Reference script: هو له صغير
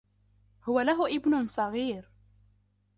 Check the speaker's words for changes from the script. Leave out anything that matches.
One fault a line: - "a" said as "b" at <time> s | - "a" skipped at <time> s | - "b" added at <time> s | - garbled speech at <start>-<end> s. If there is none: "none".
- "ابن" added at 1.1 s